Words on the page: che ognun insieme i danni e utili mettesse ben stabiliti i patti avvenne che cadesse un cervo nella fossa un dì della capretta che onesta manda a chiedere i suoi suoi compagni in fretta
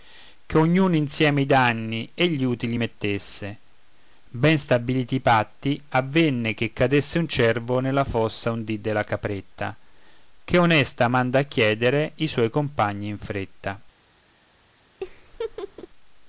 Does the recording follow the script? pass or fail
fail